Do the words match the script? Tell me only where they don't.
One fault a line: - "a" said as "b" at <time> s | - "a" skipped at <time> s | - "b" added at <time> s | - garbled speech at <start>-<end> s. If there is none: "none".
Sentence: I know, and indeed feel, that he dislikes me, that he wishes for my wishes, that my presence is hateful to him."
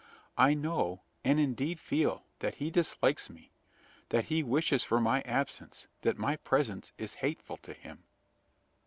- "wishes" said as "absence" at 5.2 s